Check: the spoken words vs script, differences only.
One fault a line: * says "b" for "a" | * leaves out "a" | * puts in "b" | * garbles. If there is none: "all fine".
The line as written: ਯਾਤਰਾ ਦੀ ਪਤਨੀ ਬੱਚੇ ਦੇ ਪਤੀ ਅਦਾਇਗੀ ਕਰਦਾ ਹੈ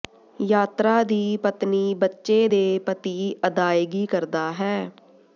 all fine